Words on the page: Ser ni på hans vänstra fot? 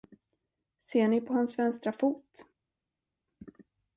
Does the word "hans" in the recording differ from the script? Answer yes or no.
no